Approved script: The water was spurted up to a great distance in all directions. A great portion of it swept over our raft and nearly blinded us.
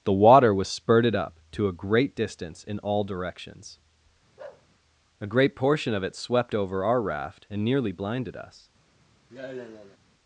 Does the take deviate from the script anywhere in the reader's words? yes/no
no